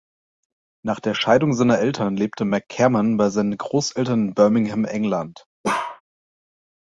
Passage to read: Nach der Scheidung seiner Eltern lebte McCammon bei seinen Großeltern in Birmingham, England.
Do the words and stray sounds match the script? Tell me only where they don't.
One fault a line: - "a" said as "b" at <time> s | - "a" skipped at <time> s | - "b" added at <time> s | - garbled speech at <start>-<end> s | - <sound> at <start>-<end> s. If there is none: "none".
- bark at 5.6-6.0 s